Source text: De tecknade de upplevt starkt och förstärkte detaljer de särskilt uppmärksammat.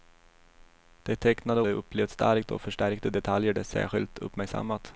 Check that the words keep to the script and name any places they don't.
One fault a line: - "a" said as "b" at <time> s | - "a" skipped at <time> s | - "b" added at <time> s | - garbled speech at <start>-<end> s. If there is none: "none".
none